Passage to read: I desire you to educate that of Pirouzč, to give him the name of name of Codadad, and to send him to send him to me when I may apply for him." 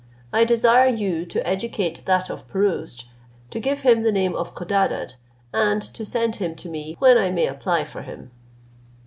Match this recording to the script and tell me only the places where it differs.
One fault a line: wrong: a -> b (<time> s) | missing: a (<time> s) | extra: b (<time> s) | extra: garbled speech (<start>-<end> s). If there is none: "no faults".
missing: name of (4.5 s)
missing: send him to (6.7 s)